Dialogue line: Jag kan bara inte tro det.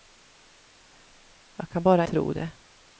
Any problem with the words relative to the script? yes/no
yes